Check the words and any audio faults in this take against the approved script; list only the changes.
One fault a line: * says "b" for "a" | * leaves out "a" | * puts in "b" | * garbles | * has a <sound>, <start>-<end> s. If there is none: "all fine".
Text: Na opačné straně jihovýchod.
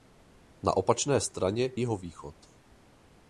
all fine